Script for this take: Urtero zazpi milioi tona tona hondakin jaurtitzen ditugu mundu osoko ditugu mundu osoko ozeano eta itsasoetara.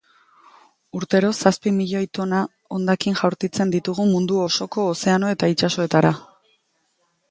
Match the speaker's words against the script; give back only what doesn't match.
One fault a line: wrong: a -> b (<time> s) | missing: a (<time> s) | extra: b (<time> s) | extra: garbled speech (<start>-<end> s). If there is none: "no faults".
missing: tona (2.4 s)
missing: ditugu mundu osoko (4.9 s)